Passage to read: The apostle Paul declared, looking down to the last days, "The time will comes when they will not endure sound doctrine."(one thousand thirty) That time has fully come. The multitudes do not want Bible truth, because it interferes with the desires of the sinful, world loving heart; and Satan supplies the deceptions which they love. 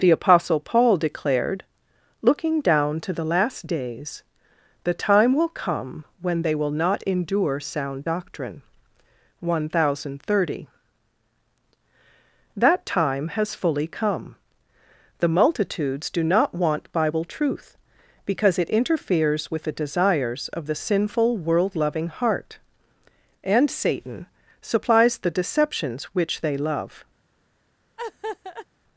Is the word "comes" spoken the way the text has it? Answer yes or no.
no